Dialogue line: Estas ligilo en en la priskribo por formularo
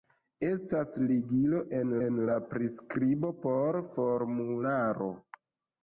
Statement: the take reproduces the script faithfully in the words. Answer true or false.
true